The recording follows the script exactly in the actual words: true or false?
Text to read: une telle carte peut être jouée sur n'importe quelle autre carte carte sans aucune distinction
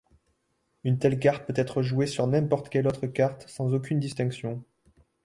false